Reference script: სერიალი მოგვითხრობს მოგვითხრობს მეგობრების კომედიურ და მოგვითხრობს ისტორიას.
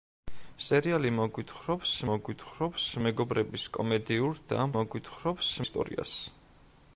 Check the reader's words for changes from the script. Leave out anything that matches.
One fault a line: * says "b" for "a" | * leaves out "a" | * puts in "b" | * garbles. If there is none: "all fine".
all fine